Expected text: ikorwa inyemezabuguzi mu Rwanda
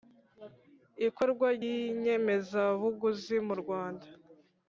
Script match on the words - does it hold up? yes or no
yes